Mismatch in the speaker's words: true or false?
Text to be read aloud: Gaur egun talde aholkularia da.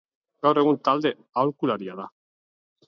false